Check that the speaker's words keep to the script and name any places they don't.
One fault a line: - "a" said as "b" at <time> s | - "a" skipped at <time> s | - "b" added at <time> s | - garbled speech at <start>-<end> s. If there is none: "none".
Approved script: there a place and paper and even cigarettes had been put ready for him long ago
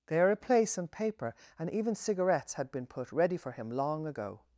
none